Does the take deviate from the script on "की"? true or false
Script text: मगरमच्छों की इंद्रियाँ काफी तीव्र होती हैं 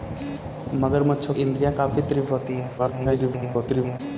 true